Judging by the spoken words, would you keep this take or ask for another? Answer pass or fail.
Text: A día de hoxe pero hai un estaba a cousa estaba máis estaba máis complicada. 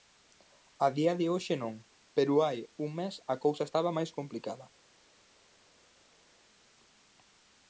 fail